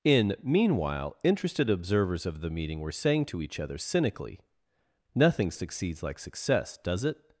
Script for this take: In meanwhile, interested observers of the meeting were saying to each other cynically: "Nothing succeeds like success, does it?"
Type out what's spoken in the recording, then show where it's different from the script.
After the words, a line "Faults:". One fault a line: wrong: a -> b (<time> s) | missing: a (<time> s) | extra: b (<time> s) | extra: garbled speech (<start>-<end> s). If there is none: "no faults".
In meanwhile, interested observers of the meeting were saying to each other cynically: "Nothing succeeds like success, does it?"
Faults:
no faults